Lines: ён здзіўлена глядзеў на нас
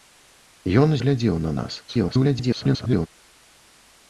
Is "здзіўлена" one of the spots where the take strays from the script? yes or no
yes